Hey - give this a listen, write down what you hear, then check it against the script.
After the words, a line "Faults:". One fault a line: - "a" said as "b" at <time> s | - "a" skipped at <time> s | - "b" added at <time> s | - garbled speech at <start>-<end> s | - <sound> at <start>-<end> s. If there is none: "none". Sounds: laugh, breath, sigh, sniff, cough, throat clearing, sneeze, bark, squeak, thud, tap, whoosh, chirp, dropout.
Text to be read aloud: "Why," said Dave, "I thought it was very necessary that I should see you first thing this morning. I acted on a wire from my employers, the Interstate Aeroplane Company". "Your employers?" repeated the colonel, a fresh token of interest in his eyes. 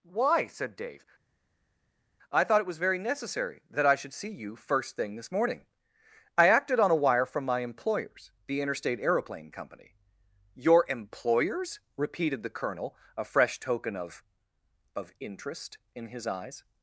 "Why," said Dave, "I thought it was very necessary that I should see you first thing this morning. I acted on a wire from my employers, the Interstate Aeroplane Company". "Your employers?" repeated the colonel, a fresh token of of interest in his eyes.
Faults:
- "of" added at 15.0 s